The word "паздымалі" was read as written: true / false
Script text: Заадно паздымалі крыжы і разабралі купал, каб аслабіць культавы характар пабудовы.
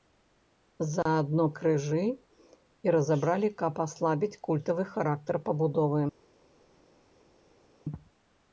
false